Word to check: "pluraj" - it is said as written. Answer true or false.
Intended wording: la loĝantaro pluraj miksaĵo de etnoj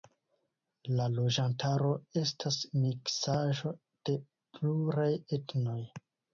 false